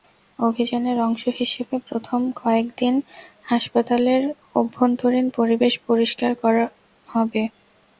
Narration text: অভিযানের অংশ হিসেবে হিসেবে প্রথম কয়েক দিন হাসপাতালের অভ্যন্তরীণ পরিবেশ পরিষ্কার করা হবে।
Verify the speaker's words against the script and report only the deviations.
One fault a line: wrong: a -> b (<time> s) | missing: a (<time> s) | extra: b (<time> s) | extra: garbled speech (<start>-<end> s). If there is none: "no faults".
missing: হিসেবে (1.8 s)